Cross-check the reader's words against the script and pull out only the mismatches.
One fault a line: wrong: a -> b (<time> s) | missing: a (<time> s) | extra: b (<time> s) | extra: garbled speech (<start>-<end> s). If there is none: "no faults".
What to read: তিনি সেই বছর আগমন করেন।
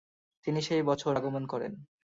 no faults